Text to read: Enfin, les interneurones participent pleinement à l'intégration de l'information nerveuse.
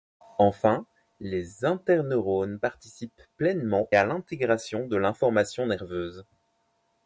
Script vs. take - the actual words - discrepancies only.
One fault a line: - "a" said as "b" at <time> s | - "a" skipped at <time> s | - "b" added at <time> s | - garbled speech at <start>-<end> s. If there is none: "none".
none